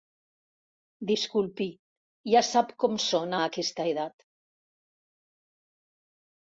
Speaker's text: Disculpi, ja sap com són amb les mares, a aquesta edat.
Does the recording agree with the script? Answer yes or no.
no